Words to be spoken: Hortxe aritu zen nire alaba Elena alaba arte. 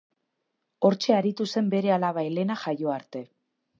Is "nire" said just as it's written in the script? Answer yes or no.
no